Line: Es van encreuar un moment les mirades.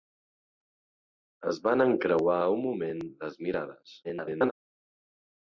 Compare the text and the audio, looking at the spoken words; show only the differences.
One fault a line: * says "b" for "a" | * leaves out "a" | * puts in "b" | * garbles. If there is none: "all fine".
* garbles